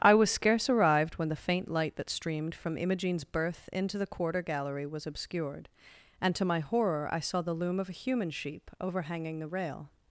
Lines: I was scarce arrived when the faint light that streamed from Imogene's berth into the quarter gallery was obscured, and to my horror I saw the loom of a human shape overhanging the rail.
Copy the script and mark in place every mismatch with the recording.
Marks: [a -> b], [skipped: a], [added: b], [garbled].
I was scarce arrived when the faint light that streamed from Imogene's berth into the quarter gallery was obscured, and to my horror I saw the loom of a human [shape -> sheep] overhanging the rail.